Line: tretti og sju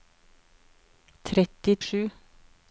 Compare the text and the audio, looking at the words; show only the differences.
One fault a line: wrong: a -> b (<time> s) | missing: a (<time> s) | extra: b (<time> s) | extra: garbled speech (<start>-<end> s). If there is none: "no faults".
no faults